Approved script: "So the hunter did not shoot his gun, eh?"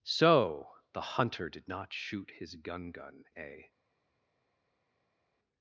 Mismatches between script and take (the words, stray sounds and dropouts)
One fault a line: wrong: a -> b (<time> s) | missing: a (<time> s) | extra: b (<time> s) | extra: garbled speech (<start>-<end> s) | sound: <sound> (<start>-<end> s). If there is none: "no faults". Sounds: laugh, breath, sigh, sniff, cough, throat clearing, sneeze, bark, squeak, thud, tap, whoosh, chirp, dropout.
extra: gun (2.9 s)